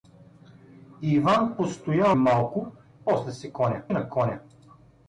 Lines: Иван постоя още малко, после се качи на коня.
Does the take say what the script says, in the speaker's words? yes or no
no